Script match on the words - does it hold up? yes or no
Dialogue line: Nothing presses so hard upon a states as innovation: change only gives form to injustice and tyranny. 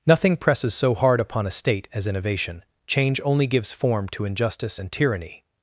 no